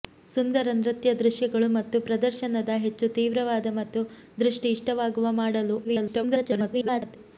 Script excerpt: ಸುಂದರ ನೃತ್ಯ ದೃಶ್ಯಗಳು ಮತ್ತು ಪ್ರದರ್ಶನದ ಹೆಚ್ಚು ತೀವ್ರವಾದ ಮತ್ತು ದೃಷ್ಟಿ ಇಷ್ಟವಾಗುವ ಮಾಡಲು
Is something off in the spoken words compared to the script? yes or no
yes